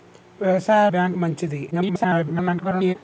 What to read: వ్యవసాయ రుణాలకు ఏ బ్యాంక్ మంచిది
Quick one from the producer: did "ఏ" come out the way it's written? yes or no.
no